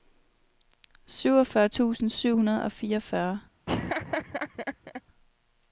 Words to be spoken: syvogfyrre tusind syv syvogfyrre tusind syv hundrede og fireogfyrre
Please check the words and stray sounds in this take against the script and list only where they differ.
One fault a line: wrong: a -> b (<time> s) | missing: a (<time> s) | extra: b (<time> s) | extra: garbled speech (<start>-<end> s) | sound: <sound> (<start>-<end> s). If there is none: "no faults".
missing: syvogfyrre tusind syv (2.4 s)
sound: laugh (3.7-5.0 s)